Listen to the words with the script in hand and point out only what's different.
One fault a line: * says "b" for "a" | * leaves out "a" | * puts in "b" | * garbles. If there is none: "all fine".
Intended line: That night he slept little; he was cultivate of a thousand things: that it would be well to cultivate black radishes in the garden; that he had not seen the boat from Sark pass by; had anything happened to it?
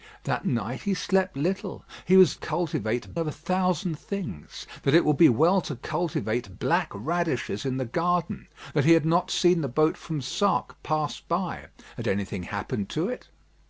all fine